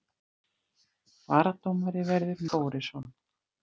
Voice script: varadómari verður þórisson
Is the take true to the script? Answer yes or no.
yes